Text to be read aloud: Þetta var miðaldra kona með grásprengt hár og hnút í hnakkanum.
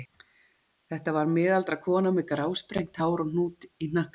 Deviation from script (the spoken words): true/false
false